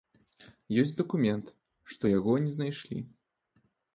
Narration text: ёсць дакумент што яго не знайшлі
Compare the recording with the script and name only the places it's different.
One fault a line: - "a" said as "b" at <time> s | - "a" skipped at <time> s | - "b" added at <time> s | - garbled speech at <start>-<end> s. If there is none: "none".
none